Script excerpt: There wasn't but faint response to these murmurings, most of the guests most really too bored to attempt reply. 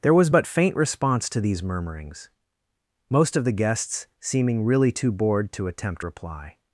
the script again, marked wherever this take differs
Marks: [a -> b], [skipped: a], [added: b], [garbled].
There [wasn't -> was] but faint response to these murmurings, most of the guests [most -> seeming] really too bored to attempt reply.